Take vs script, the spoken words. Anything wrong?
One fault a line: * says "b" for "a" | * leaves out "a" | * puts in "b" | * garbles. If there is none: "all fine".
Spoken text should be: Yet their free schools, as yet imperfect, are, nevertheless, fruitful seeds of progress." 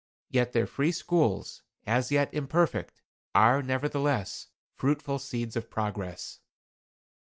all fine